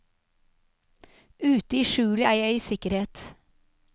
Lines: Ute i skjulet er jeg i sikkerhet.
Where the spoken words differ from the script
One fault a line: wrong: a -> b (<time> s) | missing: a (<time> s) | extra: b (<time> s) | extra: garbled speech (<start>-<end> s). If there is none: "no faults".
no faults